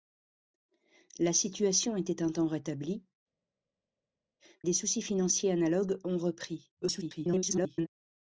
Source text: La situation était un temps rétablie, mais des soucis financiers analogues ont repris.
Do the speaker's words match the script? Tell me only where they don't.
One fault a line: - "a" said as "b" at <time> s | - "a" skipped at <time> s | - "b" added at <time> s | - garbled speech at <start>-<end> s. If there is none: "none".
- "mais" skipped at 3.0 s
- garbled speech at 6.8-7.9 s